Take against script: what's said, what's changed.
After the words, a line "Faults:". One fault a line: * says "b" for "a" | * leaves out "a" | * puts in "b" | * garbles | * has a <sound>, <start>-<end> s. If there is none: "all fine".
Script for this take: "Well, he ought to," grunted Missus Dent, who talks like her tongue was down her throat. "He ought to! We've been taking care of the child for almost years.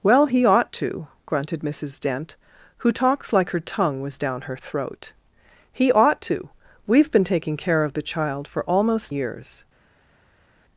"Well, he ought to," grunted Missus Dent, who talks like her tongue was down her throat. "He ought to! We've been taking care of the child for almost years.
Faults:
all fine